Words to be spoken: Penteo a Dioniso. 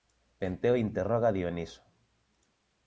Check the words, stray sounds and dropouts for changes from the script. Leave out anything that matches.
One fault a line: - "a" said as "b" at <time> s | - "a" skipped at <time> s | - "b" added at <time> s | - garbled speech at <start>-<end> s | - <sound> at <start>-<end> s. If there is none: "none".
- "interroga" added at 0.8 s